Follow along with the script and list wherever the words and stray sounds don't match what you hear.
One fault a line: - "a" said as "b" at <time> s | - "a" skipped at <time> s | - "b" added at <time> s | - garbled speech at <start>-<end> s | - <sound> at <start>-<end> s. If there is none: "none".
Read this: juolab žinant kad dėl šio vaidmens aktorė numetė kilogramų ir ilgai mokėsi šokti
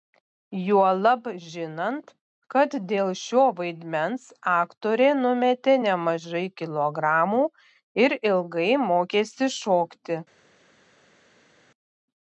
- "nemažai" added at 5.9 s